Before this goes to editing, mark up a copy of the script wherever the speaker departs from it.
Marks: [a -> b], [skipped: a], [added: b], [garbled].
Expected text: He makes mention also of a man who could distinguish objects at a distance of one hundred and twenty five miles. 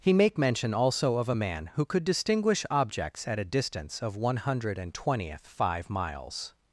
He [makes -> make] mention also of a man who could distinguish objects at a distance of one hundred and [twenty -> twentieth] five miles.